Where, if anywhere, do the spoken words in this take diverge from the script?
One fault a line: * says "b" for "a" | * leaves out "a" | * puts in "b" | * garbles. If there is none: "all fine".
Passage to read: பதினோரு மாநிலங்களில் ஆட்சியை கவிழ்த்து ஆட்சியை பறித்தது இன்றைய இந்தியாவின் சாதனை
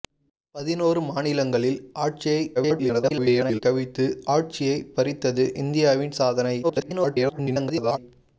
* garbles
* leaves out "இன்றைய"
* garbles